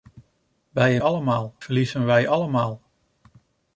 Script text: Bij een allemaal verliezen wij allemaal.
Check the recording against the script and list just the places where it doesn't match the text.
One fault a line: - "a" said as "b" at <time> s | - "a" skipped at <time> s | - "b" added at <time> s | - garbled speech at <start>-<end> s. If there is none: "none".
none